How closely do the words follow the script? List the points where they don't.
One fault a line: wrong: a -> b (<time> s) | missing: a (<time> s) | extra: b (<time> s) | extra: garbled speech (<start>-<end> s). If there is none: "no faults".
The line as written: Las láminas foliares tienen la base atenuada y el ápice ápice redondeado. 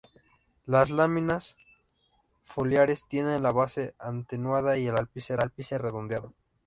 no faults